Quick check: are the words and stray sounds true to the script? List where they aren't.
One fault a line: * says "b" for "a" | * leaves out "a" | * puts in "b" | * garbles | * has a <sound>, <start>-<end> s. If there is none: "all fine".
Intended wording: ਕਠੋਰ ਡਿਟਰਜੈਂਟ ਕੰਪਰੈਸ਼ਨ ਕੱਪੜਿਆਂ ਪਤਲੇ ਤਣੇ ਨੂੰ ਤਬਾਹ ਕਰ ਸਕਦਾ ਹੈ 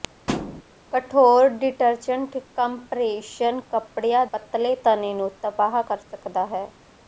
* has a thud, 0.3-0.6 s